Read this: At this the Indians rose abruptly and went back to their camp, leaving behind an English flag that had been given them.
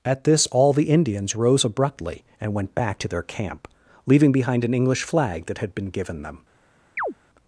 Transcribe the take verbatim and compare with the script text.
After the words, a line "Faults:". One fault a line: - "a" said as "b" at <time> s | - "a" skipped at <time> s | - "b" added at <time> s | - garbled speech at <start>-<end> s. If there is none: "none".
At this all the Indians rose abruptly and went back to their camp, leaving behind an English flag that had been given them.
Faults:
- "all" added at 0.5 s